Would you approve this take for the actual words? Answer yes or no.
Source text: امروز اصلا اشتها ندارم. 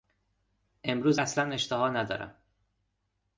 yes